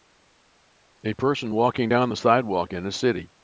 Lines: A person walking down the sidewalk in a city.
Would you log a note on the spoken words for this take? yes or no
no